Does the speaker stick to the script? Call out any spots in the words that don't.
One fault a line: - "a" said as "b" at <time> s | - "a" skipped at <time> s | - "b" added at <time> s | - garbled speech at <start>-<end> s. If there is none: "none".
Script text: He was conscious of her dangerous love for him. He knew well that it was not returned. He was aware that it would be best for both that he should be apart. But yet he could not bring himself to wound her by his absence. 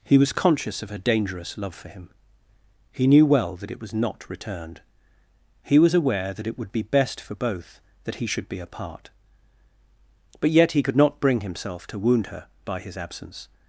none